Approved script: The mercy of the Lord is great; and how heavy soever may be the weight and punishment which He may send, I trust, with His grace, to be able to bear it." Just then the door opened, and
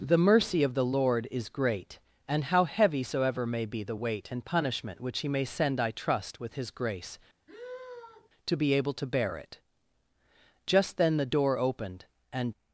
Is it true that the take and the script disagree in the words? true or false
false